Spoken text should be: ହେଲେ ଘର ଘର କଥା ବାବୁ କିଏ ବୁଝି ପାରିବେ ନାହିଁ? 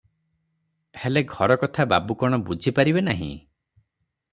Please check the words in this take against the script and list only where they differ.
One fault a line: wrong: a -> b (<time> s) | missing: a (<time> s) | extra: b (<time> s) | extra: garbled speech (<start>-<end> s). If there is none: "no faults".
missing: ଘର (1.6 s)
wrong: କିଏ -> କଣ (2.2 s)